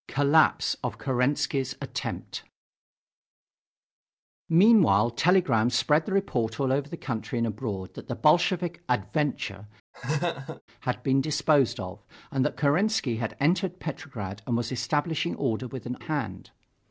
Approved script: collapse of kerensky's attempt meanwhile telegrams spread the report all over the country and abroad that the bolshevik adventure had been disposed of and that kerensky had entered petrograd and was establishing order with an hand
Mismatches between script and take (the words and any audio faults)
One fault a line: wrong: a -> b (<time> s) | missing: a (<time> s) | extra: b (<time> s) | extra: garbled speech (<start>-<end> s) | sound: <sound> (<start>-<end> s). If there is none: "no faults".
sound: laugh (9.9-10.6 s)